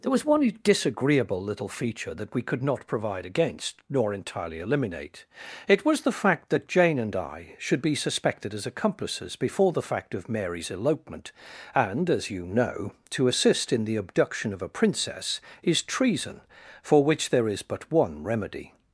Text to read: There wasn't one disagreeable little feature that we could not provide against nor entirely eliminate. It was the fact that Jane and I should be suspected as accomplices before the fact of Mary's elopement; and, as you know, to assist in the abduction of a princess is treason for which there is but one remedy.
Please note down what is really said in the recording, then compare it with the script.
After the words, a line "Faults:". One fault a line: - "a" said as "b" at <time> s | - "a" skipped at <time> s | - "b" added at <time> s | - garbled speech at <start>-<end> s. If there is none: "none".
There was one disagreeable little feature that we could not provide against nor entirely eliminate. It was the fact that Jane and I should be suspected as accomplices before the fact of Mary's elopement; and, as you know, to assist in the abduction of a princess is treason for which there is but one remedy.
Faults:
- "wasn't" said as "was" at 0.1 s